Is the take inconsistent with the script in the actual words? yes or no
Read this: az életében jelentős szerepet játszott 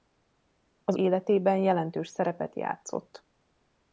no